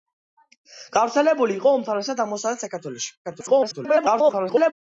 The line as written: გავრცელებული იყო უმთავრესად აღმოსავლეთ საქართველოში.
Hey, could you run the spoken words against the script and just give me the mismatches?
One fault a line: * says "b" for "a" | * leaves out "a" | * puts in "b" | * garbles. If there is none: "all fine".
* garbles